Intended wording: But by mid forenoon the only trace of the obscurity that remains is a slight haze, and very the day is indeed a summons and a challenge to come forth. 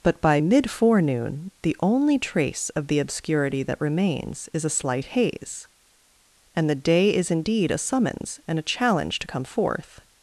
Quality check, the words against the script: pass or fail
fail